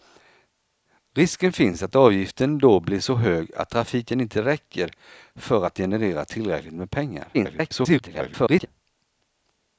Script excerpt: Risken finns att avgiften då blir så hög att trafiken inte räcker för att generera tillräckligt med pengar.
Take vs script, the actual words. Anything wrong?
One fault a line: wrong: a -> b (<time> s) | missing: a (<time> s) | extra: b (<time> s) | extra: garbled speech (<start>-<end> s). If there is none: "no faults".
extra: garbled speech (7.3-8.7 s)